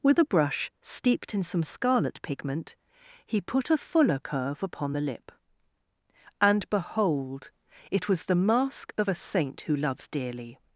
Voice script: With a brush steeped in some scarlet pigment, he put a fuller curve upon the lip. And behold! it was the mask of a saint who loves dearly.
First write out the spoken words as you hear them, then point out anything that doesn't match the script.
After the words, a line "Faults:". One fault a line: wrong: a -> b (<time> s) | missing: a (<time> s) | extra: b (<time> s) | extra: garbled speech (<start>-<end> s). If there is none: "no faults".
With a brush steeped in some scarlet pigment, he put a fuller curve upon the lip. And behold! it was the mask of a saint who loves dearly.
Faults:
no faults